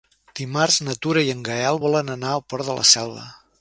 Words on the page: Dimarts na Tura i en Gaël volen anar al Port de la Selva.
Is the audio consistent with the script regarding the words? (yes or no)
yes